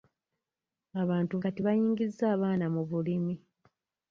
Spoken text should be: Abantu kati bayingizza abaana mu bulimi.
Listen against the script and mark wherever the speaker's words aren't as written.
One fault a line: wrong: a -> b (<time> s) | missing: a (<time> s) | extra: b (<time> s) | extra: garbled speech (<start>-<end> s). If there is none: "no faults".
no faults